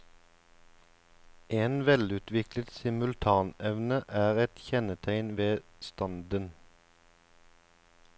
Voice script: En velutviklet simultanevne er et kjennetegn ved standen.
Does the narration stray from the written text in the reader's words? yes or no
no